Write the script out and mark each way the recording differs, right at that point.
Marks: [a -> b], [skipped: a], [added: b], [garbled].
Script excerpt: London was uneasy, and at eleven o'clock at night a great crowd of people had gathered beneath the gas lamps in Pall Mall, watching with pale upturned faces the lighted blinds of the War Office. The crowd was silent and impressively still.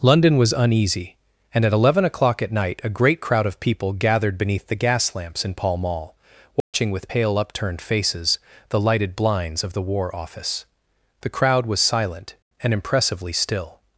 London was uneasy, and at eleven o'clock at night a great crowd of people [skipped: had] gathered beneath the gas lamps in Pall Mall, watching with pale upturned faces the lighted blinds of the War Office. The crowd was silent and impressively still.